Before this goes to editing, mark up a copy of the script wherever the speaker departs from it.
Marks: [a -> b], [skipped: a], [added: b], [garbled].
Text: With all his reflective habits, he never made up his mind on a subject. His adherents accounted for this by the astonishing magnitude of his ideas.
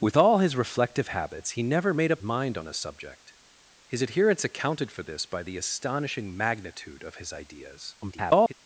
With all his reflective habits, he never made up [skipped: his] mind on a subject. His adherents accounted for this by the astonishing magnitude of his ideas. [garbled]